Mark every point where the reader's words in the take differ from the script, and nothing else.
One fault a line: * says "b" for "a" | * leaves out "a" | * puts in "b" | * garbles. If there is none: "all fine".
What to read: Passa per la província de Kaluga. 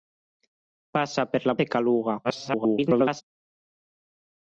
* leaves out "província"
* garbles